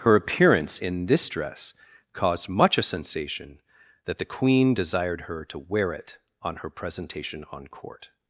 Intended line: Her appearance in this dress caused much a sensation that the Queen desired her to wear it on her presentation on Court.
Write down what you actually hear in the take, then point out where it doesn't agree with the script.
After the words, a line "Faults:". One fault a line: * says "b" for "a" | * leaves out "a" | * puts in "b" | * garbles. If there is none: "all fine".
Her appearance in this dress caused much a sensation that the Queen desired her to wear it on her presentation on Court.
Faults:
all fine